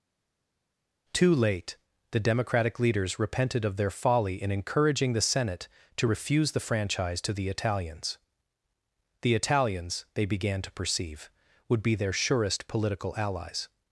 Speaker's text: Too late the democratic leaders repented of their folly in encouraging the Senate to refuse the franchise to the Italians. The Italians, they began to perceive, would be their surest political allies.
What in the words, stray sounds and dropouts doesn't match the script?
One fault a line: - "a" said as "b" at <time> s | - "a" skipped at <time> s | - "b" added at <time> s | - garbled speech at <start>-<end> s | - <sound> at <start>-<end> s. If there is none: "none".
none